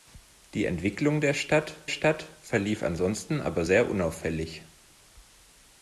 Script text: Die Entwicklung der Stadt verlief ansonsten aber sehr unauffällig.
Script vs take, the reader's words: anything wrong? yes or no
yes